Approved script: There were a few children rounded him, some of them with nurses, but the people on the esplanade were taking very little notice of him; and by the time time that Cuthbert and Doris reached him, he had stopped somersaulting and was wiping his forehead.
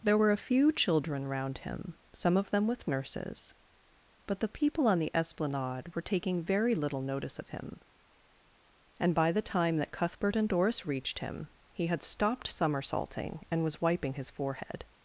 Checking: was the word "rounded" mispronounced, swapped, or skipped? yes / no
yes